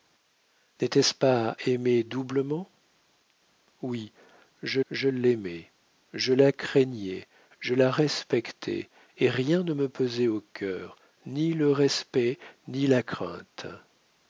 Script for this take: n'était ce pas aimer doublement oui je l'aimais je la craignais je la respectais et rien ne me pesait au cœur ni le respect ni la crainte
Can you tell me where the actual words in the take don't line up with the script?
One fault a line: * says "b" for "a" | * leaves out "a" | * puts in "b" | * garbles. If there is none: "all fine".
* puts in "je"